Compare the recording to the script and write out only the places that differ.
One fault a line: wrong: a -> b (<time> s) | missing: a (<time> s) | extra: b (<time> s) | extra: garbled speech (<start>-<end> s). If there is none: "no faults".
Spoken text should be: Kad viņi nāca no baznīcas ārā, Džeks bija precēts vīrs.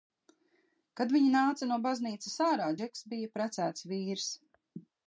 no faults